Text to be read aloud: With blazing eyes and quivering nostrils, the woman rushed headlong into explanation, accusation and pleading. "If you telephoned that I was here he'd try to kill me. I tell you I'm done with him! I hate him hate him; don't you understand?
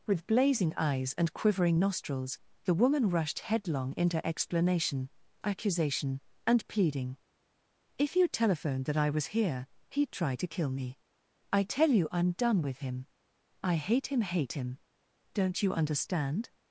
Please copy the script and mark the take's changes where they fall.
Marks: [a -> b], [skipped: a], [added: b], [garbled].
With blazing eyes and quivering nostrils, the woman rushed headlong into explanation, accusation and pleading. "If you telephoned that I was here he'd try to kill me. I tell you I'm done with him! I hate him hate him; don't you understand?